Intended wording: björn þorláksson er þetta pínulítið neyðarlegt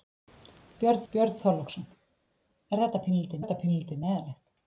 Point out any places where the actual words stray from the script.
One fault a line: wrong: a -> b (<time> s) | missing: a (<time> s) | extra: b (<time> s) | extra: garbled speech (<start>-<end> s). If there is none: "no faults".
extra: björn (1.1 s)
extra: þetta pínulítið (3.4 s)